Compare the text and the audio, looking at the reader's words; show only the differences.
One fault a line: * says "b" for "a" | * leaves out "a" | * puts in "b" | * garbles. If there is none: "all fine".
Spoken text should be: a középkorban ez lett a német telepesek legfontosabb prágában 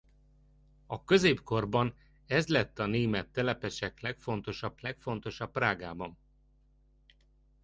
* puts in "legfontosabb"